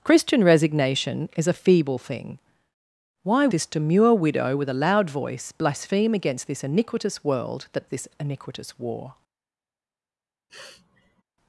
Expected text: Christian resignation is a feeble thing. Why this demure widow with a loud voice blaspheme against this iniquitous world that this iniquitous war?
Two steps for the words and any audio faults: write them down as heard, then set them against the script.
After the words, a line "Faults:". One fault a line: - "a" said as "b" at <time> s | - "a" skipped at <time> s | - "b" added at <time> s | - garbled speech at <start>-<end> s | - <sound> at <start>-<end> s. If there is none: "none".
Christian resignation is a feeble thing. Why this demure widow with a loud voice blaspheme against this iniquitous world that this iniquitous war?
Faults:
- sniff at 10.5-11.2 s